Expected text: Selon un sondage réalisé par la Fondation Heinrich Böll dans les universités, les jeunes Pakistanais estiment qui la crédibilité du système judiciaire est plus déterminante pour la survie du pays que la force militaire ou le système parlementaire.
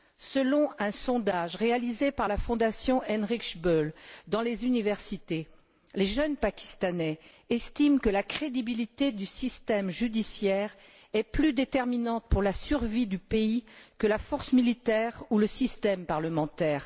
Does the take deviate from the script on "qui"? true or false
true